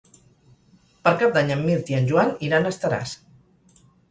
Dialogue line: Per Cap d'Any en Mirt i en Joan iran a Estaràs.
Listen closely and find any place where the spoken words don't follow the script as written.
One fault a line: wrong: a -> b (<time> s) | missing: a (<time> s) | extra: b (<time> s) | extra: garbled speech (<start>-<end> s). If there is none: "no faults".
no faults